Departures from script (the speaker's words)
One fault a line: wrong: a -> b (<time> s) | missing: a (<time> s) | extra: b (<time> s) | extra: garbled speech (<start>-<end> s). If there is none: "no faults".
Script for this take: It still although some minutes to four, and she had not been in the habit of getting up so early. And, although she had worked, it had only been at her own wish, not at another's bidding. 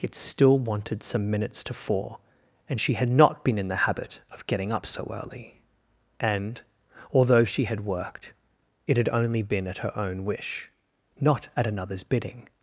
wrong: although -> wanted (0.6 s)